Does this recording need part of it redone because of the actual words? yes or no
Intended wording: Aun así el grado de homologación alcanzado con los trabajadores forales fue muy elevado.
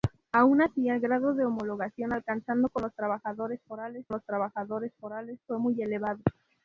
yes